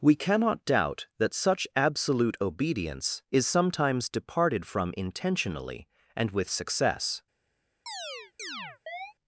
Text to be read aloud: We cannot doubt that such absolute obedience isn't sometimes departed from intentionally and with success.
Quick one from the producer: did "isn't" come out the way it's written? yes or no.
no